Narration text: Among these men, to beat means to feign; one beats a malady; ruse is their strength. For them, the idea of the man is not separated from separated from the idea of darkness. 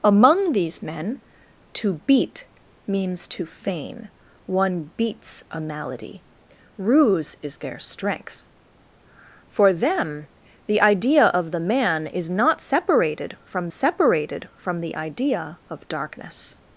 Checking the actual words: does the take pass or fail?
pass